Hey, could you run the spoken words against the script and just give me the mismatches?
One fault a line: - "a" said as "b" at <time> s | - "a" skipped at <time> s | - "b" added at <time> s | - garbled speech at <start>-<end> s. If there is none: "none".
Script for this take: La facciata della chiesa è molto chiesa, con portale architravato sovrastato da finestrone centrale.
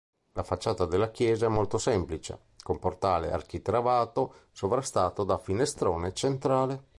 - "chiesa" said as "semplice" at 1.7 s